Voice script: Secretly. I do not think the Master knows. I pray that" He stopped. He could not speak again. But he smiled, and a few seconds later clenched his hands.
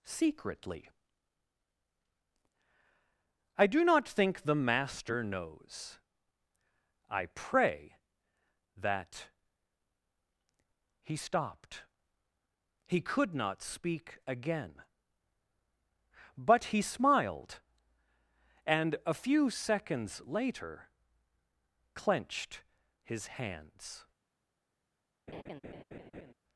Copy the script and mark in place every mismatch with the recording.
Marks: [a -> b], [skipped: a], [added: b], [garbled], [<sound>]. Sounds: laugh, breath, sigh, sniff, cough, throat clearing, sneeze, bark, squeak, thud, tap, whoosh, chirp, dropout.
Secretly. I do not think the Master knows. I pray that" He stopped. He could not speak again. But he smiled, and a few seconds later clenched his hands. [laugh]